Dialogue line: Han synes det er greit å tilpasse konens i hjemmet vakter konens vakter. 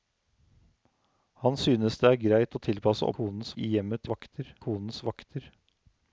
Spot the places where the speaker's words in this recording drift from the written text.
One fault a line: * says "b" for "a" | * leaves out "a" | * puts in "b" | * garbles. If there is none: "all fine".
all fine